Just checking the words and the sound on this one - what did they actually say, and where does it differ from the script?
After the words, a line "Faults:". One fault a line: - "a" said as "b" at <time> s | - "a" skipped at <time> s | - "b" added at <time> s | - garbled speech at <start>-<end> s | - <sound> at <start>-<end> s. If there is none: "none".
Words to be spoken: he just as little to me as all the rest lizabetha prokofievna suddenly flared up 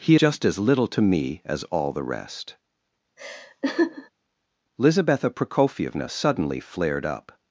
he just as little to me as all the rest lizabetha prokofievna suddenly flared up
Faults:
- laugh at 3.2-4.1 s